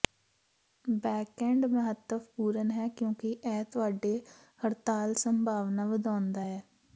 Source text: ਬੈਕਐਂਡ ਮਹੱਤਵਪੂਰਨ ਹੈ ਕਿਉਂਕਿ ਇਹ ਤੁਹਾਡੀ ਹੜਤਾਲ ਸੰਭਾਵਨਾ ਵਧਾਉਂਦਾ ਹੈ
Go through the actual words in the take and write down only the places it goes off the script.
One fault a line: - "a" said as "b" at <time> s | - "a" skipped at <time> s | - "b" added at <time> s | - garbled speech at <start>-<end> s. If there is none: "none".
none